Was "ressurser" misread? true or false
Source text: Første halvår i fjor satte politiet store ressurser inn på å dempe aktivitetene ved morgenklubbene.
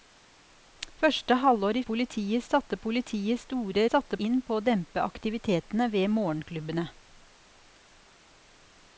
true